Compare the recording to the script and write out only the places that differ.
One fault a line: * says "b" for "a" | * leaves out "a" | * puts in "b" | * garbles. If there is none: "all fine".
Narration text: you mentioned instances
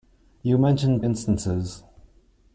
all fine